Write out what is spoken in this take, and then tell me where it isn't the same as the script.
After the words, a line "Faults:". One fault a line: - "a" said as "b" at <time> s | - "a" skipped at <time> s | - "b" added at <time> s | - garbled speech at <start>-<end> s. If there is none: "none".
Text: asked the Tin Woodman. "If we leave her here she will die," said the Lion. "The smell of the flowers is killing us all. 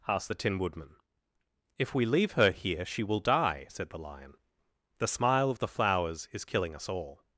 asked the Tin Woodman. "If we leave her here she will die," said the Lion. "The smile of the flowers is killing us all.
Faults:
- "smell" said as "smile" at 5.1 s